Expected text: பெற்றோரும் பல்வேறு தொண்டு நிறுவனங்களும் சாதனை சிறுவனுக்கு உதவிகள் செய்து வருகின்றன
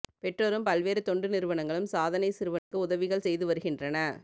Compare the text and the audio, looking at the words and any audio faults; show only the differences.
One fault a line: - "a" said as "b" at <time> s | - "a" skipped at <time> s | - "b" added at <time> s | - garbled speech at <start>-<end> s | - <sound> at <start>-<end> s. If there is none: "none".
- dropout at 2.6-2.7 s